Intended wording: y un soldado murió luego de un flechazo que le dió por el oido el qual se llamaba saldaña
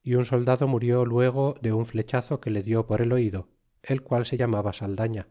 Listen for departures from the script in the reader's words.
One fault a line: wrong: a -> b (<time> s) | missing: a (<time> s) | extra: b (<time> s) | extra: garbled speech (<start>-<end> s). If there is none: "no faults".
no faults